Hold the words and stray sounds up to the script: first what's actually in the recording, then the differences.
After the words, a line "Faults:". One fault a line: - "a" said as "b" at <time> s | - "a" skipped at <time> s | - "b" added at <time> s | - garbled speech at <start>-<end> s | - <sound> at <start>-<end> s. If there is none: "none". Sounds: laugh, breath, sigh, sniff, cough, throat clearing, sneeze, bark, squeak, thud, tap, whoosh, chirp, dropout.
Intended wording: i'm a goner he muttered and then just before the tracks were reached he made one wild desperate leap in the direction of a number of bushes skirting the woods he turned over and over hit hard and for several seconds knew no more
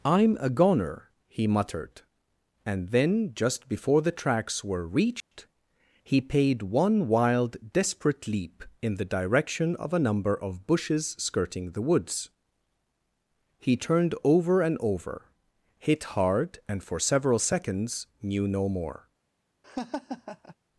i'm a goner he muttered and then just before the tracks were reached he paid one wild desperate leap in the direction of a number of bushes skirting the woods he turned over and over hit hard and for several seconds knew no more
Faults:
- dropout at 5.2-5.3 s
- "made" said as "paid" at 6.2 s
- laugh at 19.6-20.6 s